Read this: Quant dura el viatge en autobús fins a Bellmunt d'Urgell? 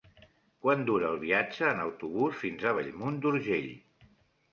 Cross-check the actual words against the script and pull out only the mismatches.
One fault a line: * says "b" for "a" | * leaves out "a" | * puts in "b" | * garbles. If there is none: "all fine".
all fine